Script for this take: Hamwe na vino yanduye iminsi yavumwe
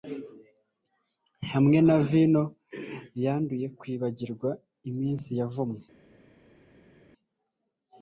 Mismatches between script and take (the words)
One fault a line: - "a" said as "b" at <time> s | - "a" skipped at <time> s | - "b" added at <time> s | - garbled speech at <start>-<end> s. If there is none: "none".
- "kwibagirwa" added at 3.8 s